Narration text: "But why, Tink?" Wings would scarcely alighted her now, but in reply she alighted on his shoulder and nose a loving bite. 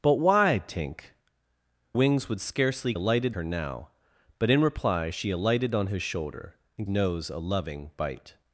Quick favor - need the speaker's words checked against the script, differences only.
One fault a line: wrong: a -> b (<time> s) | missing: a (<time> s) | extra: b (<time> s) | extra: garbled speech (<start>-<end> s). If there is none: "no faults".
no faults